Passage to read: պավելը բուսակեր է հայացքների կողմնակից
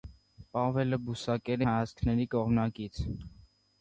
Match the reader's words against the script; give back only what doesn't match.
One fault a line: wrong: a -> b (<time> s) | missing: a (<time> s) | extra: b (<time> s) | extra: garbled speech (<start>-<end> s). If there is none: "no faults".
no faults